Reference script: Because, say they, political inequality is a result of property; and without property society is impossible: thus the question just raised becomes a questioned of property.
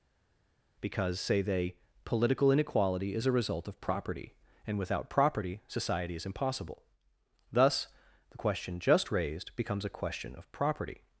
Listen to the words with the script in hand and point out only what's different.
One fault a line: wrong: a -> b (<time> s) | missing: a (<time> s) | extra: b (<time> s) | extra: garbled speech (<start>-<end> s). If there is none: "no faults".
wrong: questioned -> question (9.9 s)